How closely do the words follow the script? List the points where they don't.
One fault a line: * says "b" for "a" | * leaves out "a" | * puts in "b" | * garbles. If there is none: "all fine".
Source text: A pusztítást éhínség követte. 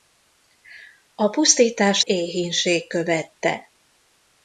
all fine